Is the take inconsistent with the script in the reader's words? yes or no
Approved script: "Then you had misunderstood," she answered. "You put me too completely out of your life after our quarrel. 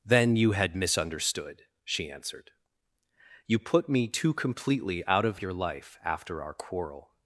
no